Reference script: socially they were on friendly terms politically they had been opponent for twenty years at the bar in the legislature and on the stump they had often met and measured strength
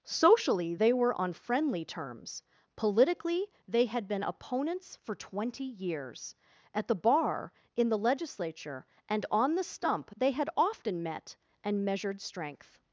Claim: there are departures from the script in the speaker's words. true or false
true